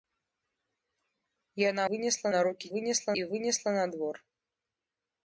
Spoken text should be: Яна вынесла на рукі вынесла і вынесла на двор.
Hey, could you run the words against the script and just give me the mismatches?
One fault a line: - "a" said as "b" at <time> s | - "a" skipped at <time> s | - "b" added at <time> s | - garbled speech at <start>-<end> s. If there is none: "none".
none